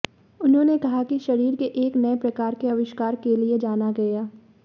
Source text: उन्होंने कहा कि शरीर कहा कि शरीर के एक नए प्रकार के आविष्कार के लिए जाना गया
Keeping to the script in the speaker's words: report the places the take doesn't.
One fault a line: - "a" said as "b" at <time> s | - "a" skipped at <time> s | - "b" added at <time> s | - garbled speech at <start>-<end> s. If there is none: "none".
- "कहा कि शरीर" skipped at 1.6 s